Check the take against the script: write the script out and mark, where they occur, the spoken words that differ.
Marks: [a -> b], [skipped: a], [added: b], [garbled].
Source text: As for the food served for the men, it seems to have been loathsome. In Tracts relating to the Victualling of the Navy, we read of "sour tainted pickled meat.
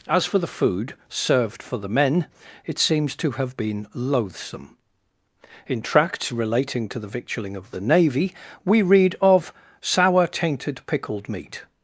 As for the food served for the men, it seems to have been loathsome. In Tracts relating to the Victualling of the Navy, we read of "sour tainted pickled meat.